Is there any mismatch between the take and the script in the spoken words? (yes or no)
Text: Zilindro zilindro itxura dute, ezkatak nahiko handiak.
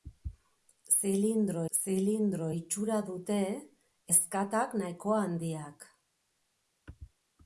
no